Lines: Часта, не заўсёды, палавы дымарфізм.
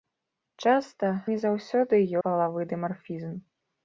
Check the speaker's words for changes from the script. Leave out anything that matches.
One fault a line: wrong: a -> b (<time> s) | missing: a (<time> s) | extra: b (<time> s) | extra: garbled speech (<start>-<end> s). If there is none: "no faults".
no faults